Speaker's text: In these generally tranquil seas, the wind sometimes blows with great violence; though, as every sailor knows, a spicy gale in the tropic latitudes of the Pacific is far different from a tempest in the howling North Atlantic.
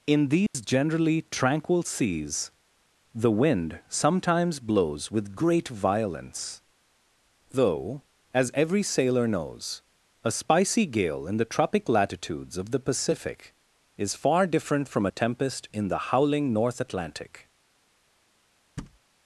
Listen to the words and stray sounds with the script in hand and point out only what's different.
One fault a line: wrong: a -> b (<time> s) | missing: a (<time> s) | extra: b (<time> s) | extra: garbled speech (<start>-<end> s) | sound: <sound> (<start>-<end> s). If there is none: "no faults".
sound: dropout (0.5-0.5 s)
sound: thud (18.8-19.0 s)